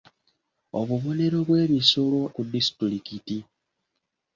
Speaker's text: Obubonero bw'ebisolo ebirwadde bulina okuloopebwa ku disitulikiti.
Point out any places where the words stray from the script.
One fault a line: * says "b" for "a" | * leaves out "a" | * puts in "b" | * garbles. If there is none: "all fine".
* leaves out "ebirwadde bulina okuloopebwa"